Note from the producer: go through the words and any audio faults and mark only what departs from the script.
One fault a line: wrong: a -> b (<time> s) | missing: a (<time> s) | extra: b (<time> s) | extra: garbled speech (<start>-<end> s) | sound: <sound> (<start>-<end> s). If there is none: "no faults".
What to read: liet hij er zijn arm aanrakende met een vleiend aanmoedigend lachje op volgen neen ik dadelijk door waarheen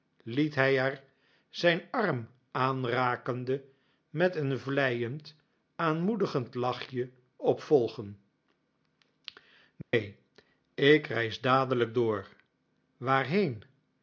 sound: dropout (9.8-9.9 s)
extra: reis (11.1 s)